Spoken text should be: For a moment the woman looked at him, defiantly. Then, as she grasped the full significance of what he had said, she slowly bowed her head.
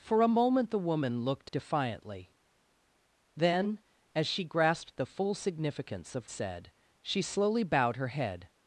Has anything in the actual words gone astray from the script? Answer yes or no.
yes